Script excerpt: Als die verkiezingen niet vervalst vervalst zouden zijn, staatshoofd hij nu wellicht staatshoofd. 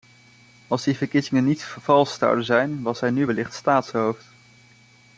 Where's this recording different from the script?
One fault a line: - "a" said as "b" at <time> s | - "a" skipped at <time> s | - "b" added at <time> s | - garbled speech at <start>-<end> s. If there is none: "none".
- "vervalst" skipped at 2.2 s
- "staatshoofd" said as "was" at 2.8 s